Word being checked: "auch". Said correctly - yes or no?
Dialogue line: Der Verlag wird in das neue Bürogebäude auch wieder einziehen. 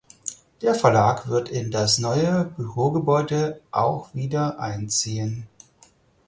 yes